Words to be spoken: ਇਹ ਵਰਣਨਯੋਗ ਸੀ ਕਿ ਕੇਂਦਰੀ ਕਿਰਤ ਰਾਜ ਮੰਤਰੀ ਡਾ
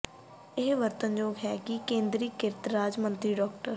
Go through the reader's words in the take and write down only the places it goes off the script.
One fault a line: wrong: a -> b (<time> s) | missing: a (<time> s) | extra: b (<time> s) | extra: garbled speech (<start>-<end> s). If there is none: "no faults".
wrong: ਸੀ -> ਹੈ (1.4 s)